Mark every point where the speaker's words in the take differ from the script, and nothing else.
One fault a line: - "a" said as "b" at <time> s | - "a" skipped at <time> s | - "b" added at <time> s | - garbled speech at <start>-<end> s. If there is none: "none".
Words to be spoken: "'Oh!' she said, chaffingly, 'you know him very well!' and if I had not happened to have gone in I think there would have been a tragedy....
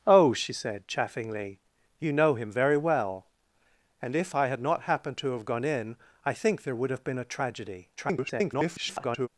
- garbled speech at 8.0-9.3 s